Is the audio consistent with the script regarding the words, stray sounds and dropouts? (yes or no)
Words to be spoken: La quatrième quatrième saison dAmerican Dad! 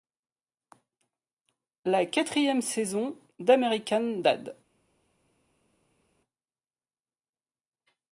no